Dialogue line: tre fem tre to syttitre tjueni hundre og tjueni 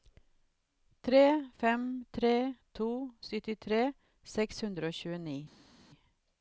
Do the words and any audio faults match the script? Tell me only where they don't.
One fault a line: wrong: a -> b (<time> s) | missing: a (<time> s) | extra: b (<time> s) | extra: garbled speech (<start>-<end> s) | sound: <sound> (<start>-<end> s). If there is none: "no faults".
wrong: tjueni -> seks (4.4 s)